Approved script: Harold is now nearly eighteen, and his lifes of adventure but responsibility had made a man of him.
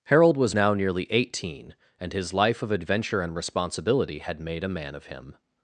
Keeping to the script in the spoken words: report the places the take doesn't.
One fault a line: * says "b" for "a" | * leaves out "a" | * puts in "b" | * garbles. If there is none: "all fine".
* says "was" for "is"
* says "life" for "lifes"
* says "and" for "but"